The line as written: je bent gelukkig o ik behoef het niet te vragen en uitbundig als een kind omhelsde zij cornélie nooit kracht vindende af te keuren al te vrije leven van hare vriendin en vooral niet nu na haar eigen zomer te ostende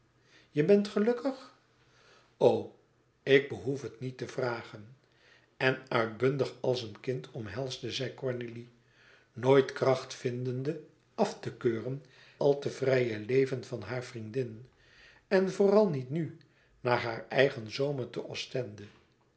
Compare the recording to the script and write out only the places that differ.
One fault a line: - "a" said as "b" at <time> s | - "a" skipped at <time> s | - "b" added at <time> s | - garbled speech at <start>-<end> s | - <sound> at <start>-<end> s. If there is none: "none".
none